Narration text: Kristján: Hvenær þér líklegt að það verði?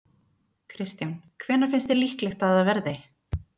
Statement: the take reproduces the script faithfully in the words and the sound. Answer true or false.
false